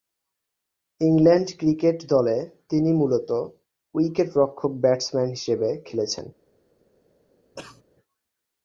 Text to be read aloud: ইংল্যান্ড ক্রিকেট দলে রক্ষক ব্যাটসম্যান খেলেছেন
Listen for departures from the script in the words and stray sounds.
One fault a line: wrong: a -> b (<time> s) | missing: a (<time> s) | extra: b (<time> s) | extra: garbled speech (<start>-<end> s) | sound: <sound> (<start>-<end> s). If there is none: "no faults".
extra: তিনি মূলতঃ উইকেট (2.7 s)
extra: হিসেবে (5.3 s)
sound: cough (7.6-7.8 s)